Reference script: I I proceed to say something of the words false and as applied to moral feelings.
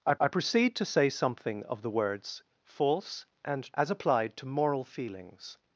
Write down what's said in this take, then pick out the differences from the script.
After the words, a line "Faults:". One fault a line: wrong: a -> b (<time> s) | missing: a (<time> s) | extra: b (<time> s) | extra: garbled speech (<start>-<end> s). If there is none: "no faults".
I I proceed to say something of the words false and as applied to moral feelings.
Faults:
no faults